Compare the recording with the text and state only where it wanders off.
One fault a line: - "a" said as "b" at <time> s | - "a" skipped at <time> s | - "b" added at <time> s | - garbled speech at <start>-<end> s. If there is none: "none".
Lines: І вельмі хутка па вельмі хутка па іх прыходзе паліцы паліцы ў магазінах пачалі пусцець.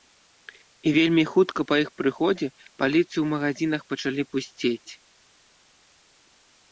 - "вельмі хутка па" skipped at 1.8 s
- "паліцы" skipped at 3.1 s